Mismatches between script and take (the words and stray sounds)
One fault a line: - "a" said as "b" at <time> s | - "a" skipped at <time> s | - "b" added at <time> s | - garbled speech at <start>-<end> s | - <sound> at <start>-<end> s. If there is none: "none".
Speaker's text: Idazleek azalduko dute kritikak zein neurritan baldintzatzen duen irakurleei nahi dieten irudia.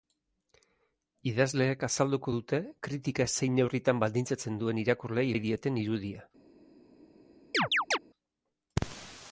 - chirp at 7.5-8.0 s